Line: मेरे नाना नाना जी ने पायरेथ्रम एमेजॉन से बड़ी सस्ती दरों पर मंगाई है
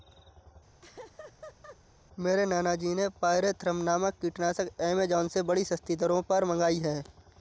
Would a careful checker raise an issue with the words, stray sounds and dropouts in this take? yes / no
yes